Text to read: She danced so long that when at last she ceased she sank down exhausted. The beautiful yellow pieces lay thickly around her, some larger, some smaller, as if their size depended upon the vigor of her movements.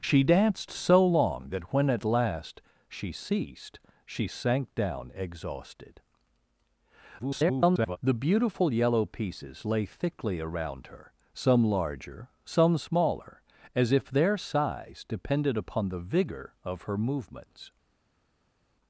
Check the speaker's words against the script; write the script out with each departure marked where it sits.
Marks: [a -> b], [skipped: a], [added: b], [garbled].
She danced so long that when at last she ceased she sank down exhausted. [garbled] The beautiful yellow pieces lay thickly around her, some larger, some smaller, as if their size depended upon the vigor of her movements.